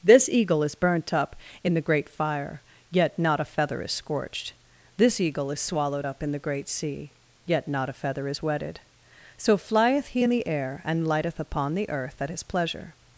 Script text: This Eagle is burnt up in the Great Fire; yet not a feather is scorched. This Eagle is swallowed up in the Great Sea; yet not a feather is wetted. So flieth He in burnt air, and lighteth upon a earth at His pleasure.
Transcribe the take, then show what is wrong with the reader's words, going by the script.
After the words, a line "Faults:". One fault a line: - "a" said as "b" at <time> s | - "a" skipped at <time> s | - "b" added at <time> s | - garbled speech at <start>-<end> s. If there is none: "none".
This Eagle is burnt up in the Great Fire; yet not a feather is scorched. This Eagle is swallowed up in the Great Sea; yet not a feather is wetted. So flieth He in the air, and lighteth upon the earth at His pleasure.
Faults:
- "burnt" said as "the" at 10.3 s
- "a" said as "the" at 11.7 s